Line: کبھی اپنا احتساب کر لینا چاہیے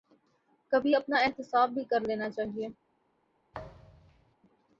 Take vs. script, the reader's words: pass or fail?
fail